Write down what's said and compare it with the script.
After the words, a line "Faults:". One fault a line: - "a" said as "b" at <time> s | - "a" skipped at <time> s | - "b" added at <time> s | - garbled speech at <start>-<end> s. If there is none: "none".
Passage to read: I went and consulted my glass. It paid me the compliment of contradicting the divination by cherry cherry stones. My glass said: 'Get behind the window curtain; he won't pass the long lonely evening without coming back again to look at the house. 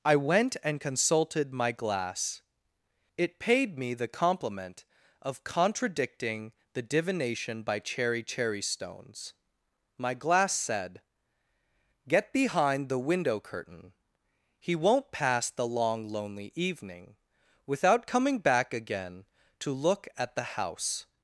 I went and consulted my glass. It paid me the compliment of contradicting the divination by cherry cherry stones. My glass said: 'Get behind the window curtain; he won't pass the long lonely evening without coming back again to look at the house.
Faults:
none